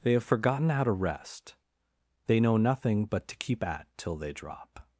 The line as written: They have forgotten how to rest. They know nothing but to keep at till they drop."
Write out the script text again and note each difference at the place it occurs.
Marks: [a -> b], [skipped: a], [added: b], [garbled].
They have forgotten how to rest. They know nothing but to keep at till they drop."